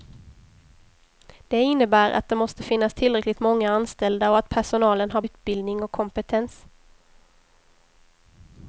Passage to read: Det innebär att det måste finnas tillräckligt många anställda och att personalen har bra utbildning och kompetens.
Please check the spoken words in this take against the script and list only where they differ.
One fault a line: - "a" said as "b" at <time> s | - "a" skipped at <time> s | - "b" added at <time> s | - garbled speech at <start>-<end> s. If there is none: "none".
- "bra" skipped at 5.2 s